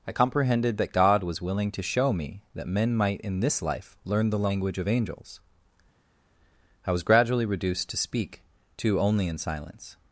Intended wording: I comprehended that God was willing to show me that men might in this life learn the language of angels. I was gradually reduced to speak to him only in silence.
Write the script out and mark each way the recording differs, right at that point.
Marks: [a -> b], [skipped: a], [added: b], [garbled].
I comprehended that God was willing to show me that men might in this life learn the language of angels. I was gradually reduced to speak to [skipped: him] only in silence.